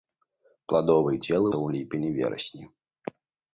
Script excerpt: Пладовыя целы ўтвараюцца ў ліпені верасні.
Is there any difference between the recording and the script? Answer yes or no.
yes